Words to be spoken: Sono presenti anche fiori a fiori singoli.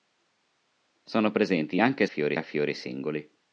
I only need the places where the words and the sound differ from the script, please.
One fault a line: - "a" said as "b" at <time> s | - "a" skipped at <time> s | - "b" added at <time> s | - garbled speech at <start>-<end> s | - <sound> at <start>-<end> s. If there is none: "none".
none